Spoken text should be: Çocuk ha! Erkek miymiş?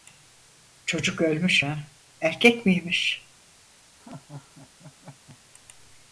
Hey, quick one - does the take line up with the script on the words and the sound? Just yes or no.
no